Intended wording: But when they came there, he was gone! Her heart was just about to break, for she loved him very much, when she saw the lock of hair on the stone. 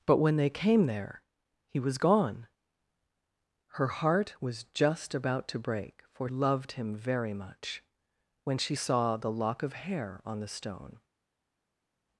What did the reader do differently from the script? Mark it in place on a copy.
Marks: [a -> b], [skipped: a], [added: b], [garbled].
But when they came there, he was gone! Her heart was just about to break, for [skipped: she] loved him very much, when she saw the lock of hair on the stone.